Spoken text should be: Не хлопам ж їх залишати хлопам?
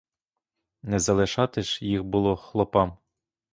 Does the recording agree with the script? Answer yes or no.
no